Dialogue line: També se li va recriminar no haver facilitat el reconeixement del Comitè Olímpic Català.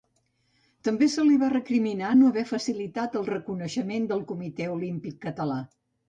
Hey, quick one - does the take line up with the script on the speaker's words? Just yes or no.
yes